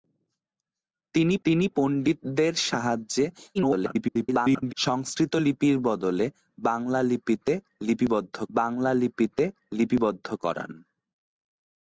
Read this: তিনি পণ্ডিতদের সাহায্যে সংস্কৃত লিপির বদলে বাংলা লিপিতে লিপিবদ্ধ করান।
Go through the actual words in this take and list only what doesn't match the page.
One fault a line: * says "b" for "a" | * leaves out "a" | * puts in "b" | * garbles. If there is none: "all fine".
* puts in "তিনি"
* garbles
* puts in "বাংলা লিপিতে লিপিবদ্ধ"